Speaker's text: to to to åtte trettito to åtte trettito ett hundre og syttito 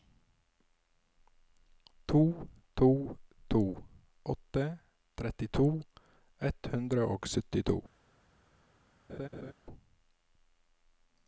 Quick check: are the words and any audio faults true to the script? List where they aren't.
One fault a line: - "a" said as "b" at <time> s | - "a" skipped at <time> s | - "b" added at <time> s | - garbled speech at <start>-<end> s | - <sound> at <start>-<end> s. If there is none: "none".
- "to åtte trettito" skipped at 5.7 s
- laugh at 9.1-9.5 s